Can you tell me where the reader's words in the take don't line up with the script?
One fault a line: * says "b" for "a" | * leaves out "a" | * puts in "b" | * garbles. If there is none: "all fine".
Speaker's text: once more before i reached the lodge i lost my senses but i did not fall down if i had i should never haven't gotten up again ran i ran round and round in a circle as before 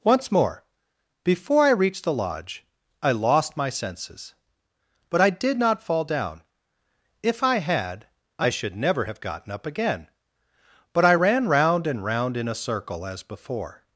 * says "have" for "haven't"
* says "but" for "ran"